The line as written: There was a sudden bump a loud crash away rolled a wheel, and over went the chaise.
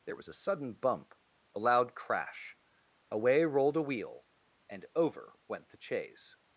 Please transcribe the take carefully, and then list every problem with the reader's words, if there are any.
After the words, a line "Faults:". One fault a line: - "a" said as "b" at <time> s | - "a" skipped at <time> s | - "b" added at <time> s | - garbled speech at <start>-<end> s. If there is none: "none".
There was a sudden bump a loud crash away rolled a wheel, and over went the chaise.
Faults:
none